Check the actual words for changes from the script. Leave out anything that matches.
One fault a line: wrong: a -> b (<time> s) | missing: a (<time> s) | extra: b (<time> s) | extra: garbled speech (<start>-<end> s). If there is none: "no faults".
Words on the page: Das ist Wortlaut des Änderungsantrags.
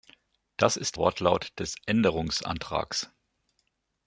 no faults